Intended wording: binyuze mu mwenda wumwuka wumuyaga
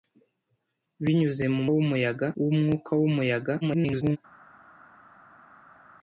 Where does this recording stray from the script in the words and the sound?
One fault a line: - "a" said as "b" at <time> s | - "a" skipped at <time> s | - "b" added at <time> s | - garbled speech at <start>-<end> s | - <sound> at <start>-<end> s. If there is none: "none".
- "mwenda" said as "wumuyaga" at 1.7 s
- garbled speech at 3.6-4.2 s